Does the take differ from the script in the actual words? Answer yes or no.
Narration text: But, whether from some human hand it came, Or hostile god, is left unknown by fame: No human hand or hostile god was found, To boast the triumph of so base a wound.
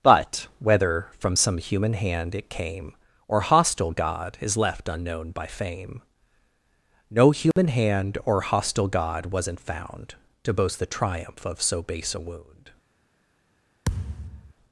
yes